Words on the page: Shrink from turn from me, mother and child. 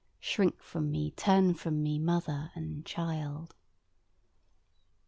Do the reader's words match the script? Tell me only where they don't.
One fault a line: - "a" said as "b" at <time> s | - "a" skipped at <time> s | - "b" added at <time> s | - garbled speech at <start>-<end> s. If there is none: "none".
- "me" added at 0.9 s